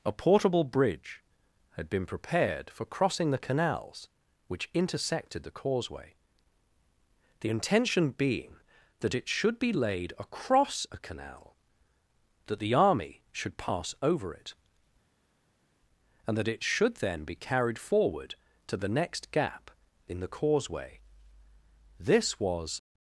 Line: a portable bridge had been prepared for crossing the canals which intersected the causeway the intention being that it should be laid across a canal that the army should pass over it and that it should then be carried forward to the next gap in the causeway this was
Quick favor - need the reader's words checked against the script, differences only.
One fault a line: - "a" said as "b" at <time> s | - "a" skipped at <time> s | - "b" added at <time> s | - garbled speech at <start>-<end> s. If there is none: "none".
none